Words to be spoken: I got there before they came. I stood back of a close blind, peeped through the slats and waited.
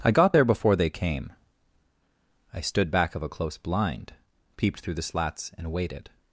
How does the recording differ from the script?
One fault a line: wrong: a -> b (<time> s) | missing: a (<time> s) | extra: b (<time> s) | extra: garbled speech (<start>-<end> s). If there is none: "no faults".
no faults